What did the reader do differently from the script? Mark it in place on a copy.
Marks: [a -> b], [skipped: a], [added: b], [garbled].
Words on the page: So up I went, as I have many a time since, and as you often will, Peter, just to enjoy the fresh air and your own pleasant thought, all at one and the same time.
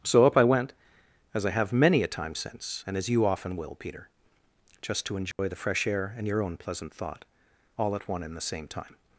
So up I went, as I have many a time since, and as you often will, Peter, just to enjoy the fresh air and your own pleasant thought, all at one and the same time.